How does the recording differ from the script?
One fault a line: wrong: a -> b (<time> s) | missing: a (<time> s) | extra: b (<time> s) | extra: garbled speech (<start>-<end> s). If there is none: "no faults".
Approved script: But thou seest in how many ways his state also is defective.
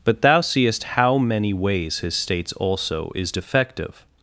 missing: in (0.8 s)
wrong: state -> states (2.2 s)